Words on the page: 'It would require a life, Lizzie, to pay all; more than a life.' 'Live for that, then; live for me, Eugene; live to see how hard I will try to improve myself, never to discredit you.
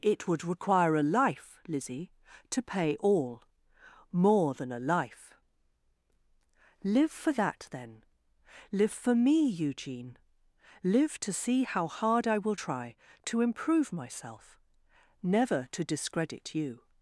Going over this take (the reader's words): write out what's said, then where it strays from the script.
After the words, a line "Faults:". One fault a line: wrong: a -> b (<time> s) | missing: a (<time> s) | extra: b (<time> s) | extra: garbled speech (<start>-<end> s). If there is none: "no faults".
'It would require a life, Lizzie, to pay all; more than a life.' 'Live for that, then; live for me, Eugene; live to see how hard I will try to improve myself, never to discredit you.
Faults:
no faults